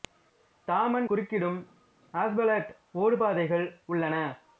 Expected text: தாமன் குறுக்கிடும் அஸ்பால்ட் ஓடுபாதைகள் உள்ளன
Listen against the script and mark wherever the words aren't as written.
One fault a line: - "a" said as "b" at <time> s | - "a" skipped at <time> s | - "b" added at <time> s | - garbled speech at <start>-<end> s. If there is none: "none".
none